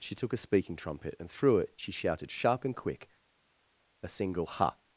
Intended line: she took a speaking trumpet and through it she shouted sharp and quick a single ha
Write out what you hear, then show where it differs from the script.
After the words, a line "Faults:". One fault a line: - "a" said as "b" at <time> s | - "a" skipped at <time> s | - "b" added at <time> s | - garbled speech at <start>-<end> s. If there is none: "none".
she took a speaking trumpet and through it she shouted sharp and quick a single ha
Faults:
none